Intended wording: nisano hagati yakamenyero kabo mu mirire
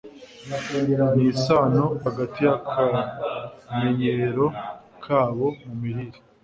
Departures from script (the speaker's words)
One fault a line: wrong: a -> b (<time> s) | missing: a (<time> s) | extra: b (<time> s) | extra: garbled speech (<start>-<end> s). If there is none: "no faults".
no faults